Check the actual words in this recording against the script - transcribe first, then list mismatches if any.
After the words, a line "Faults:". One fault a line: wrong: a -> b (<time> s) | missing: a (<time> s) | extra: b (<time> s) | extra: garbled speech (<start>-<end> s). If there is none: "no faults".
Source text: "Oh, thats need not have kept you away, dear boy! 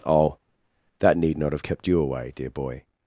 "Oh, that need not have kept you away, dear boy!
Faults:
wrong: thats -> that (1.0 s)